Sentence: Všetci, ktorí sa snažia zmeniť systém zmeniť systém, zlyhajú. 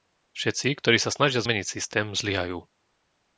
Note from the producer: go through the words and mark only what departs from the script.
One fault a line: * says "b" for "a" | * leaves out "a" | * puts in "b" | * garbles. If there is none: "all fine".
* leaves out "zmeniť systém"